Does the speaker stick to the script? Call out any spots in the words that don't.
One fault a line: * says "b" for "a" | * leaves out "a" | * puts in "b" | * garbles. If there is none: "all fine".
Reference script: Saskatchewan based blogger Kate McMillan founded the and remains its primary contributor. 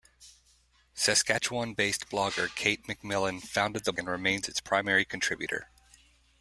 all fine